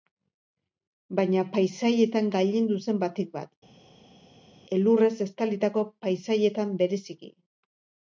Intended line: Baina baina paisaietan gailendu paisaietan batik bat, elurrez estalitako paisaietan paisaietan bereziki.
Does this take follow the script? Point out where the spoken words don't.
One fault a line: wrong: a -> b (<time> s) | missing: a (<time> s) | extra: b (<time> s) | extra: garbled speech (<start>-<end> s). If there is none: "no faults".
missing: baina (1.4 s)
wrong: paisaietan -> zen (2.9 s)
missing: paisaietan (6.8 s)